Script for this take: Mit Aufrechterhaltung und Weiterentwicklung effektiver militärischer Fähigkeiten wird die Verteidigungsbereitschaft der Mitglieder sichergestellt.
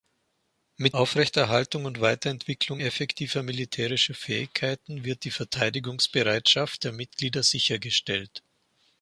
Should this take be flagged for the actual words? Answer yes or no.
no